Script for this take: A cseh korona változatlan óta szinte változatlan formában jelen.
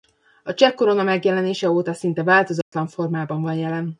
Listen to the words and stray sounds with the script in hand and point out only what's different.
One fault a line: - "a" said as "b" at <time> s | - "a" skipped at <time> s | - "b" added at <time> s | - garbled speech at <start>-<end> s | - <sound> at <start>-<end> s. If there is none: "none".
- "változatlan" said as "megjelenése" at 1.0 s
- dropout at 2.6-2.7 s
- "van" added at 3.4 s